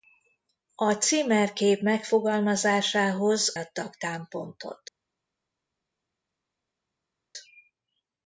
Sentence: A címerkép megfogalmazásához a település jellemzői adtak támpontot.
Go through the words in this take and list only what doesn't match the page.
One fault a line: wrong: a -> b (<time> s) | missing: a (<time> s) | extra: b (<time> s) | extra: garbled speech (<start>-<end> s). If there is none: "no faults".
missing: a település jellemzői (3.6 s)